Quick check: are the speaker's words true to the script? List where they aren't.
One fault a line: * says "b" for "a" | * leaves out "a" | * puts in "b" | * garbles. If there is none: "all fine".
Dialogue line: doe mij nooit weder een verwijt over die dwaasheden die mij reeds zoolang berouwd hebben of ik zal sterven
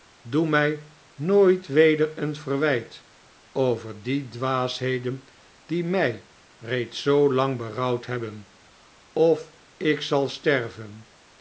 all fine